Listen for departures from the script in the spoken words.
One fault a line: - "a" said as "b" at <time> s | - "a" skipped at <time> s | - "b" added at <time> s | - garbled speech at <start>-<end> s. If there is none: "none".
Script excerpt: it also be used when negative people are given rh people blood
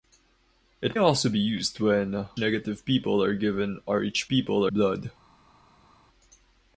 none